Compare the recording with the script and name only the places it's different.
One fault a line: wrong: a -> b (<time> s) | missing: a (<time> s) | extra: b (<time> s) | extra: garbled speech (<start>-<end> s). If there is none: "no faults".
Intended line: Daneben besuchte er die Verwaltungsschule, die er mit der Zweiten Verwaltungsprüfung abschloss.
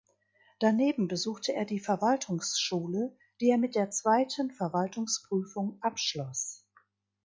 no faults